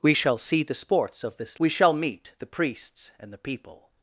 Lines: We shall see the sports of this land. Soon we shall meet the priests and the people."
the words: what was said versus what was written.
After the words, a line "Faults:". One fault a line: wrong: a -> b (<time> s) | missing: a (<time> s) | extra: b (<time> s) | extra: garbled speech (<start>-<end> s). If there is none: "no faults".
We shall see the sports of this we shall meet the priests and the people."
Faults:
missing: land Soon (1.6 s)